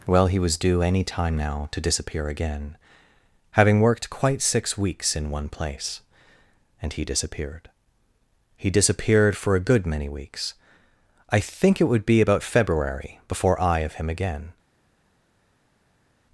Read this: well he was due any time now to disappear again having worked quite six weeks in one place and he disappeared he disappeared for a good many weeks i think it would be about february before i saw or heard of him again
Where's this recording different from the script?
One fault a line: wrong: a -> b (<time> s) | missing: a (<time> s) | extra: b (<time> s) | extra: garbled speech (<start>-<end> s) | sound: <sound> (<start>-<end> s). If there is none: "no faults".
missing: saw or heard (13.8 s)